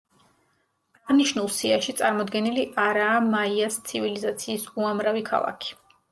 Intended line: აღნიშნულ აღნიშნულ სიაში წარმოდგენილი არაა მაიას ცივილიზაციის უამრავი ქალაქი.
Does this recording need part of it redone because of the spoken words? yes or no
yes